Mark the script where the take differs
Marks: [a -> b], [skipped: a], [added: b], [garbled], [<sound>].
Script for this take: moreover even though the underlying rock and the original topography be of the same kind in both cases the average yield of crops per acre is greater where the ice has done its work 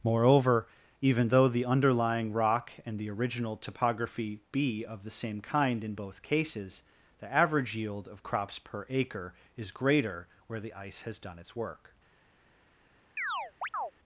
moreover even though the underlying rock and the original topography be of the same kind in both cases the average yield of crops per acre is greater where the ice has done its work [chirp]